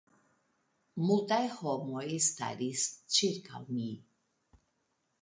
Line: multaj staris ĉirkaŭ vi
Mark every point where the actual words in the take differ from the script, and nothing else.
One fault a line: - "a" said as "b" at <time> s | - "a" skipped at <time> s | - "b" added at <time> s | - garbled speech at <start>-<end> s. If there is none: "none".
- "homoj" added at 1.6 s
- "vi" said as "mi" at 3.8 s